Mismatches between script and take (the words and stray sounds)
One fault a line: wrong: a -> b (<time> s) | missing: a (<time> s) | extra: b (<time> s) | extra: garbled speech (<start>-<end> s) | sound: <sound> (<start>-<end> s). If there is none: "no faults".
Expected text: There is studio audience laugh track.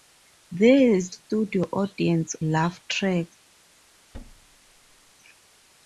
sound: thud (4.1-5.1 s)